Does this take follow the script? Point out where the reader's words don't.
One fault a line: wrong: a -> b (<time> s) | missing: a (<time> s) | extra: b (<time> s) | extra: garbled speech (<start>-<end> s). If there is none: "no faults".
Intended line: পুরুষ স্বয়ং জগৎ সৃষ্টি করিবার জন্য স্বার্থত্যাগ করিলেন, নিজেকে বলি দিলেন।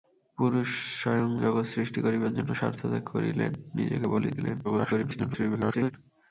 extra: garbled speech (4.6-5.9 s)